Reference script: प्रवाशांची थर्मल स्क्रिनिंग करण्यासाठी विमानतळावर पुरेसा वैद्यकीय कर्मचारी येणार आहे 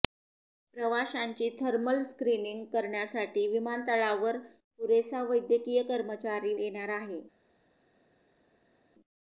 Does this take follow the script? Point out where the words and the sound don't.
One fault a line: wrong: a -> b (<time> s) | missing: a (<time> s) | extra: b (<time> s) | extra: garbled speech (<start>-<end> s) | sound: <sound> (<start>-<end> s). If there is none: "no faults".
no faults